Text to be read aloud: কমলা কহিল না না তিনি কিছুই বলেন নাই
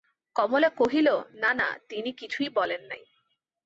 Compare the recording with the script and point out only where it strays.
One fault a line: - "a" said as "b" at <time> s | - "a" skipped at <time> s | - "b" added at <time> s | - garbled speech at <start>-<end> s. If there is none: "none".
none